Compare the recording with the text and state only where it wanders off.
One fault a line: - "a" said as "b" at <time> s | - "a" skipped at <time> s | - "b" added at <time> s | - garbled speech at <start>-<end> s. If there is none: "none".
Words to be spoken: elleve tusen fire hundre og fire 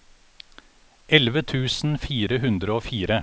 none